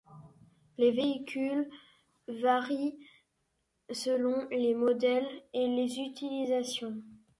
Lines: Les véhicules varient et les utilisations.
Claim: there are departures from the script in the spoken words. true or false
true